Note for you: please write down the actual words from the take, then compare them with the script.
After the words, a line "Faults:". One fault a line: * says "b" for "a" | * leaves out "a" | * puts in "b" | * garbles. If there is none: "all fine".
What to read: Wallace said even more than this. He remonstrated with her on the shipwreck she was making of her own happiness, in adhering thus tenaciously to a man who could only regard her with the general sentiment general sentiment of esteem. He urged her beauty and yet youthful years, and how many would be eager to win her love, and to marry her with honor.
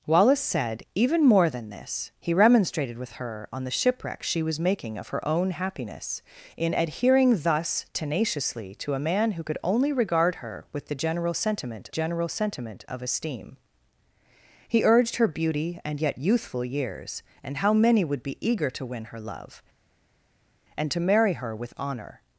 Wallace said even more than this. He remonstrated with her on the shipwreck she was making of her own happiness, in adhering thus tenaciously to a man who could only regard her with the general sentiment general sentiment of esteem. He urged her beauty and yet youthful years, and how many would be eager to win her love, and to marry her with honor.
Faults:
all fine